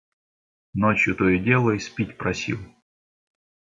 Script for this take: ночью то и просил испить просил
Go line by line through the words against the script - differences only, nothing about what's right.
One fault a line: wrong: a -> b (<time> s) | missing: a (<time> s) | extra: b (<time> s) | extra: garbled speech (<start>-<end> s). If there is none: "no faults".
wrong: просил -> дело (1.4 s)